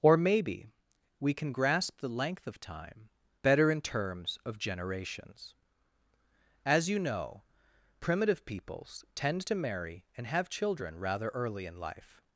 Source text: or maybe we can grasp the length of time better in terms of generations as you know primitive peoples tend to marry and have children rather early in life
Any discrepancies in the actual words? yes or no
no